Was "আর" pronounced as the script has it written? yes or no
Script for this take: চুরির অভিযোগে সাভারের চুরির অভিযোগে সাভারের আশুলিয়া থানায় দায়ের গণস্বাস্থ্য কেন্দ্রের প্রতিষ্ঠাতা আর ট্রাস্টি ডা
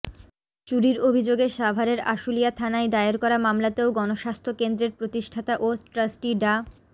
no